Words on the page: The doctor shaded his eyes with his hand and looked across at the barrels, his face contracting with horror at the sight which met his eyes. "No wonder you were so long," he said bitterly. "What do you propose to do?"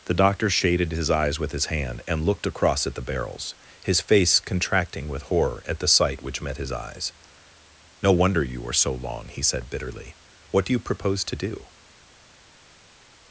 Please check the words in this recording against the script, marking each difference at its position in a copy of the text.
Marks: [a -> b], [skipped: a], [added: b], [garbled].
The doctor shaded his eyes with his hand and looked across at the barrels, his face contracting with horror at the sight which met his eyes. "No wonder you were so long," he said bitterly. "What do you propose to do?"